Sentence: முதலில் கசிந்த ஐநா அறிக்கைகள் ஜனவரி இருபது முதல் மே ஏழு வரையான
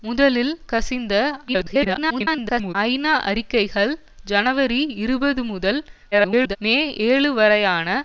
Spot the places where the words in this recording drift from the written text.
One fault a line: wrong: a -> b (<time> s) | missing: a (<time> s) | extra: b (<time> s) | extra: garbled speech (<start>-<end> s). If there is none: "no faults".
extra: garbled speech (1.5-2.8 s)
extra: garbled speech (6.1-6.6 s)